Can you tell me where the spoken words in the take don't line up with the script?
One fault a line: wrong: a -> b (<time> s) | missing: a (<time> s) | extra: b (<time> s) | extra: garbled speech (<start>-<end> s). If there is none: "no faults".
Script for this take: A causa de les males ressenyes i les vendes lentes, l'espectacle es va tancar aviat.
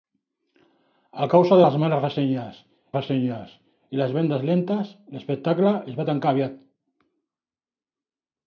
extra: ressenyes (3.0 s)